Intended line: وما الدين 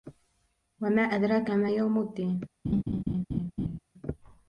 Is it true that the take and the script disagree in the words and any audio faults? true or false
true